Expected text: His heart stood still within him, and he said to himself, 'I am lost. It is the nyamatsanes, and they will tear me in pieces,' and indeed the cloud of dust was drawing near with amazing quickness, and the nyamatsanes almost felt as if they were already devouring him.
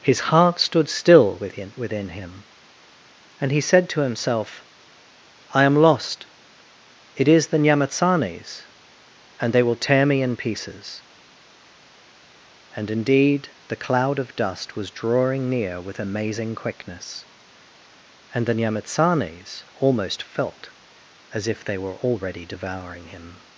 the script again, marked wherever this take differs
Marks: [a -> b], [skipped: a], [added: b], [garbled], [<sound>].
His heart stood still within [added: within] him, and he said to himself, 'I am lost. It is the nyamatsanes, and they will tear me in pieces,' and indeed the cloud of dust was drawing near with amazing quickness, and the nyamatsanes almost felt as if they were already devouring him.